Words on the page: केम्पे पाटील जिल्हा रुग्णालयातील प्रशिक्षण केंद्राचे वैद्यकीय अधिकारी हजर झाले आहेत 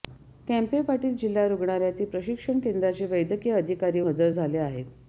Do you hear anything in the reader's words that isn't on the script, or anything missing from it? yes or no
no